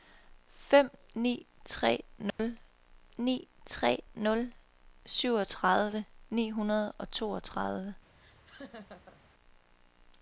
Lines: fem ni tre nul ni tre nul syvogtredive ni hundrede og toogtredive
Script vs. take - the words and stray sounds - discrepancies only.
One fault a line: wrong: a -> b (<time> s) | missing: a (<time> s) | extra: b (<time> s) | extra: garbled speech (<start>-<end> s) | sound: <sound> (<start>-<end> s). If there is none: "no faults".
sound: dropout (2.3-2.4 s)
sound: laugh (8.2-9.2 s)